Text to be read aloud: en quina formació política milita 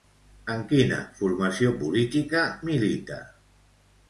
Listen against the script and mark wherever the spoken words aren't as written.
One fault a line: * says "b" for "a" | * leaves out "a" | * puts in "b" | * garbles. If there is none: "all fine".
all fine